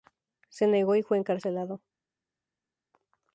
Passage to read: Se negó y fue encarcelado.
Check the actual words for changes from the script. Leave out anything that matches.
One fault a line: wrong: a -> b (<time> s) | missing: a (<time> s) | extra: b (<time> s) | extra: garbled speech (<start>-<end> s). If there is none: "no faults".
no faults